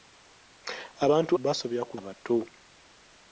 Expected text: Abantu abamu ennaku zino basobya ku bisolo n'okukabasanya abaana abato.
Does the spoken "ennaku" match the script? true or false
false